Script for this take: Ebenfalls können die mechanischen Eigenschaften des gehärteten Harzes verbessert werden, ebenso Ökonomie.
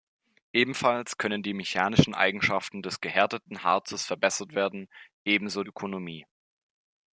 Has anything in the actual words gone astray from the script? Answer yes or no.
no